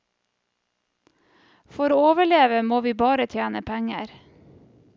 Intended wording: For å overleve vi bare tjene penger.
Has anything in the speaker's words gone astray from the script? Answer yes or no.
yes